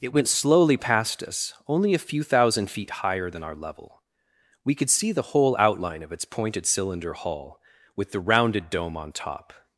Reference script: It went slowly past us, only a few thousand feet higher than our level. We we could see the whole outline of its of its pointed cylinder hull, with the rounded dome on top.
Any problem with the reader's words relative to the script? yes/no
yes